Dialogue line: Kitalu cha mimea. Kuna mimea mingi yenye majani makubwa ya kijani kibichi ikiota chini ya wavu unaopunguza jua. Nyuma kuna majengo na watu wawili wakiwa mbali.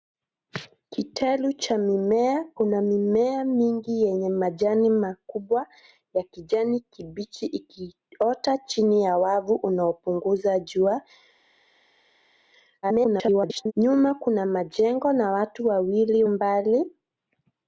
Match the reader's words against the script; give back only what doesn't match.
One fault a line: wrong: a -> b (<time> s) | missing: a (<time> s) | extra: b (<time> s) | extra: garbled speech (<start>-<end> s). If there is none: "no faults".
extra: garbled speech (12.8-13.7 s)
missing: wakiwa (16.2 s)